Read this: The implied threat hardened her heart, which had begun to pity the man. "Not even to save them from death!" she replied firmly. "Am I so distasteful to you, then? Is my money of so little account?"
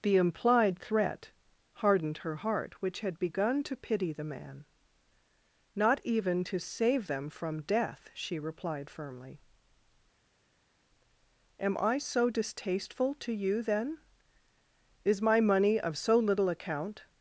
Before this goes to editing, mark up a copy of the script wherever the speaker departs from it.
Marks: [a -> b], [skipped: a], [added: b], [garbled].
The implied threat hardened her heart, which had begun to pity the man. "Not even to save them from death!" she replied firmly. "Am I so distasteful to you, then? Is my money of so little account?"